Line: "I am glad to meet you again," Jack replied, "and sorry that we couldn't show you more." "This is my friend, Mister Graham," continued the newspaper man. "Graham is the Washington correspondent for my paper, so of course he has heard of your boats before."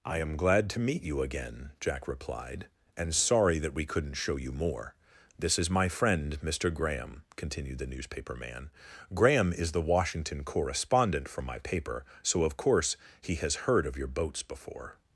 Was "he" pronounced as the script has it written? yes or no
yes